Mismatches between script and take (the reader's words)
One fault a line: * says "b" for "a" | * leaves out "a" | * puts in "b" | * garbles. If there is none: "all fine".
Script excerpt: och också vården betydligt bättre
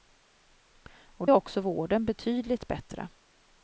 all fine